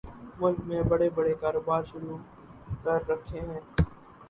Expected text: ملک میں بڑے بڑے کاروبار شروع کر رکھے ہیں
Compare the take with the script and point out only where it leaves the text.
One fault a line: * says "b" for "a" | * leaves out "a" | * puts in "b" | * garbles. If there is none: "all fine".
all fine